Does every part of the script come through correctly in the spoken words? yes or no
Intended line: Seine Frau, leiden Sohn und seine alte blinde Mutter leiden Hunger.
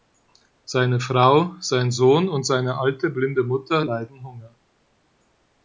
no